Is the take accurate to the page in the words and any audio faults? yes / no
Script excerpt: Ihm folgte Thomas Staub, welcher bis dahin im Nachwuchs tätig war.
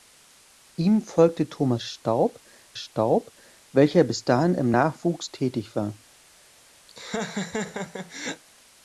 no